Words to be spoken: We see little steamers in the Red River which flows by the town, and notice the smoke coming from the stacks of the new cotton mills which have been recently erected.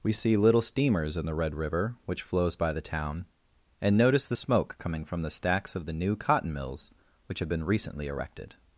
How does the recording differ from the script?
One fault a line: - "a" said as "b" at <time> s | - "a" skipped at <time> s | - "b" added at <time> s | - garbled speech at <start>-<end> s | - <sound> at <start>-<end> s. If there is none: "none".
none